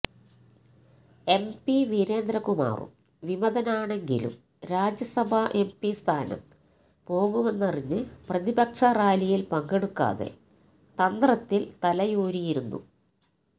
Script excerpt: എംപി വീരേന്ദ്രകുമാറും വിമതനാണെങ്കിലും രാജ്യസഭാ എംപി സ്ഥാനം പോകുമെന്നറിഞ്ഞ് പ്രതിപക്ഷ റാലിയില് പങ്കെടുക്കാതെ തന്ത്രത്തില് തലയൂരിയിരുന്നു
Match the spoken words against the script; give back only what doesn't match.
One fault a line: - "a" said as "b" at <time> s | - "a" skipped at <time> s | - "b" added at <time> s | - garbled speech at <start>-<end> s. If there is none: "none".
none